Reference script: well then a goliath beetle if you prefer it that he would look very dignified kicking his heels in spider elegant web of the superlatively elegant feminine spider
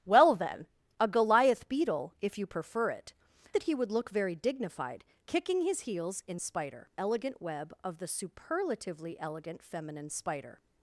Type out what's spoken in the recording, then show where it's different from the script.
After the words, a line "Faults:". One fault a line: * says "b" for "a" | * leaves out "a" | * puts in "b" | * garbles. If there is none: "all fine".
well then a goliath beetle if you prefer it that he would look very dignified kicking his heels in spider elegant web of the superlatively elegant feminine spider
Faults:
all fine